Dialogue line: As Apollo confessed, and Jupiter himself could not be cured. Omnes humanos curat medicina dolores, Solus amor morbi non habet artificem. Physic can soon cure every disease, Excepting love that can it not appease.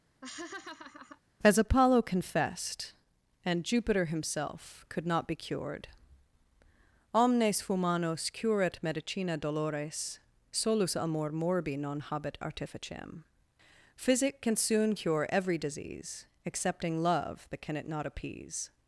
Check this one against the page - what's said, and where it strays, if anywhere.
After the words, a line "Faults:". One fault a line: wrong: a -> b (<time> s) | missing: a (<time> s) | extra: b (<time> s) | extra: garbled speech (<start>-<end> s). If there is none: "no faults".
As Apollo confessed, and Jupiter himself could not be cured. Omnes humanos curat medicina dolores, Solus amor morbi non habet artificem. Physic can soon cure every disease, Excepting love that can it not appease.
Faults:
no faults